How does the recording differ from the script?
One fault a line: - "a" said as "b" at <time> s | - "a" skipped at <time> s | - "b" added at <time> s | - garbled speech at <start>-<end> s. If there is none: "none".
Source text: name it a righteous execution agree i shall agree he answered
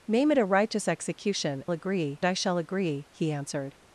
none